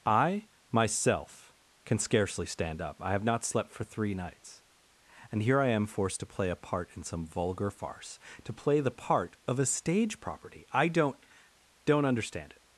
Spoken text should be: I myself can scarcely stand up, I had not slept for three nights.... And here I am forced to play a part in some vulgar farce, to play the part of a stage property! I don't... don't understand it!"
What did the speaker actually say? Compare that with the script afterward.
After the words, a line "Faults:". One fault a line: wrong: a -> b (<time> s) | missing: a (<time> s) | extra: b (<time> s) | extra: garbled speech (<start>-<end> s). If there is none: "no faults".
I myself can scarcely stand up, I have not slept for three nights.... And here I am forced to play a part in some vulgar farce, to play the part of a stage property! I don't... don't understand it!"
Faults:
wrong: had -> have (3.1 s)